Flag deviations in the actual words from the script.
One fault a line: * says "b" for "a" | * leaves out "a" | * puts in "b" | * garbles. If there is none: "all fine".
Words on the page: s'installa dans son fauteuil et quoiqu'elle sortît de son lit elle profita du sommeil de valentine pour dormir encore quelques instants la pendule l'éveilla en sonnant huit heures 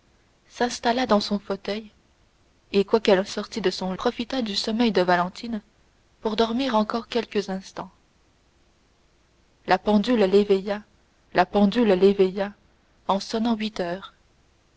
* leaves out "lit elle"
* puts in "la pendule l'éveilla"